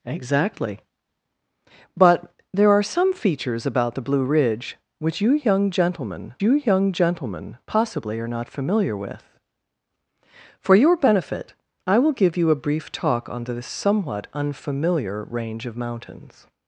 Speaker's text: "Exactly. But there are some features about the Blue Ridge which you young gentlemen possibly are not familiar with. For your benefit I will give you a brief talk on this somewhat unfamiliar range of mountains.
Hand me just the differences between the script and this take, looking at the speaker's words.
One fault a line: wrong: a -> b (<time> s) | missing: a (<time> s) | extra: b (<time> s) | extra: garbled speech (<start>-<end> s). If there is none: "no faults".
extra: you young gentlemen (6.4 s)